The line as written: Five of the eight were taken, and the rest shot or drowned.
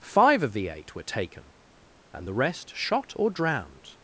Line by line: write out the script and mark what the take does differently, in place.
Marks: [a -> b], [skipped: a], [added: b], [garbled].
Five of the eight were taken, and the rest shot or drowned.